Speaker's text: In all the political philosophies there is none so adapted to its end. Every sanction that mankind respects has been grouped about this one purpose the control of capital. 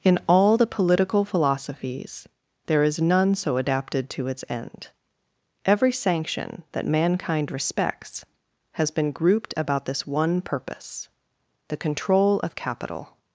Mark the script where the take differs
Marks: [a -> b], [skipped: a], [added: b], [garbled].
In all the political philosophies there is none so adapted to its end. Every sanction that mankind respects has been grouped about this one purpose the control of capital.